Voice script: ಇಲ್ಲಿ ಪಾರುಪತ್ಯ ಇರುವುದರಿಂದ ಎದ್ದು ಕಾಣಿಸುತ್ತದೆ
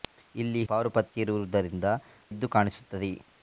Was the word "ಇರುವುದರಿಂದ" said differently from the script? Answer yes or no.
no